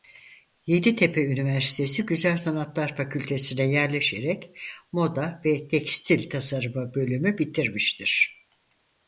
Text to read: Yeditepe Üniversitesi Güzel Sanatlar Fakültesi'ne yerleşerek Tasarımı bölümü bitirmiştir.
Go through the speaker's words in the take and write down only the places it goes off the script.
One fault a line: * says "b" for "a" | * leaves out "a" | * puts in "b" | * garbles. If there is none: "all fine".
* puts in "Moda ve Tekstil"